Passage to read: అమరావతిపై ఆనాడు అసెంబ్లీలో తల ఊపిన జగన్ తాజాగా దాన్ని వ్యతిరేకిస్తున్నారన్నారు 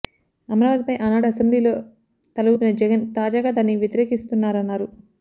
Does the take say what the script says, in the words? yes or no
yes